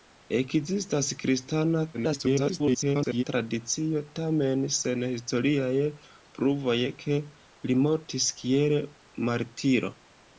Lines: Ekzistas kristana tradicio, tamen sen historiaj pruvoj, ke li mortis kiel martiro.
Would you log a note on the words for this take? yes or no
yes